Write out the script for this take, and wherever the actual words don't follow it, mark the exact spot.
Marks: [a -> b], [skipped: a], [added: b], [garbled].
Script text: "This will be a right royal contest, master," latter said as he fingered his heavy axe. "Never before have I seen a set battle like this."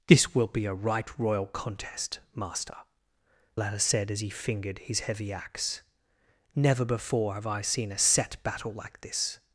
"This will be a right royal contest, master," latter said as he fingered his heavy axe. "Never before have I seen a set battle like this."